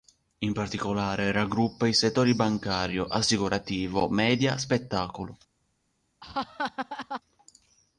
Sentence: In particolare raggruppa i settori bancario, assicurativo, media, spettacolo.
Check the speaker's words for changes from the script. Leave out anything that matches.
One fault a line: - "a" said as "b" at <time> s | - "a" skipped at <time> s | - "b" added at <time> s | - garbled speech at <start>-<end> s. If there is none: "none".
none